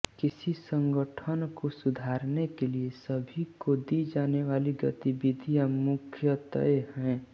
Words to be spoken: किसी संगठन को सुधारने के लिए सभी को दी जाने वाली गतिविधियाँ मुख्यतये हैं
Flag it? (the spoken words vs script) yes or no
no